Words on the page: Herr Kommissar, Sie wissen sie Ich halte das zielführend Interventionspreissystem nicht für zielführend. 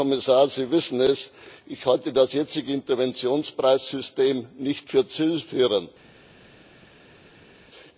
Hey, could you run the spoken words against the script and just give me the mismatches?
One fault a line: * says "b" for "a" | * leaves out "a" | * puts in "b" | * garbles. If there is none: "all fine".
* says "es" for "sie"
* says "jetzige" for "zielführend"